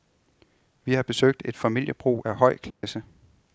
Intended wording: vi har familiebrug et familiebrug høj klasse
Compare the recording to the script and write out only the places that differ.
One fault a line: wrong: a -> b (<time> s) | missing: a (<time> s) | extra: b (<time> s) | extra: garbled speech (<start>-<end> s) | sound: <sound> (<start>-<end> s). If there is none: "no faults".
wrong: familiebrug -> besøgt (1.0 s)
extra: af (2.2 s)
sound: dropout (2.7-2.8 s)